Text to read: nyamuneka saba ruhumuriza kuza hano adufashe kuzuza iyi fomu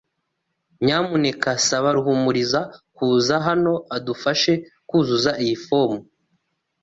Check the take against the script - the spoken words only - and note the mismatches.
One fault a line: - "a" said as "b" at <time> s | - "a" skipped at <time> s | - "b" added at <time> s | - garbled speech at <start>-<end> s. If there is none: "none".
none